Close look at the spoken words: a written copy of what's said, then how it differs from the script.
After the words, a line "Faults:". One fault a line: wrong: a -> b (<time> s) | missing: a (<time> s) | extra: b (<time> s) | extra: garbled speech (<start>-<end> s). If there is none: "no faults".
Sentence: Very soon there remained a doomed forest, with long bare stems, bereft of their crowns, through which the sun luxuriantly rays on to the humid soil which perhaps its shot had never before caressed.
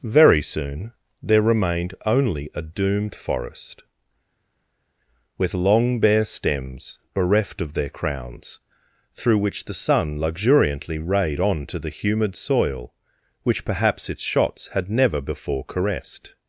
Very soon there remained only a doomed forest, with long bare stems, bereft of their crowns, through which the sun luxuriantly rayed on to the humid soil which perhaps its shots had never before caressed.
Faults:
extra: only (2.0 s)
wrong: rays -> rayed (11.0 s)
wrong: shot -> shots (14.2 s)